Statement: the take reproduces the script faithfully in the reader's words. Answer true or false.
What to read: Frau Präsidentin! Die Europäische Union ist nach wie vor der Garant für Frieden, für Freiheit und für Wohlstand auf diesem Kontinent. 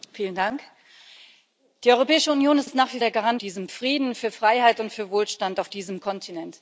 false